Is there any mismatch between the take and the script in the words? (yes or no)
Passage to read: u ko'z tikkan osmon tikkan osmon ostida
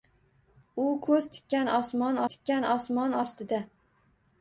no